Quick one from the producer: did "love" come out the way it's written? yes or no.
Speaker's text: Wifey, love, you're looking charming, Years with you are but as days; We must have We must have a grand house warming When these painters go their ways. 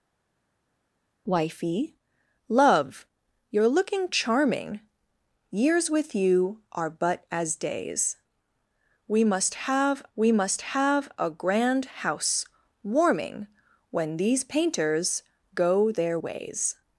yes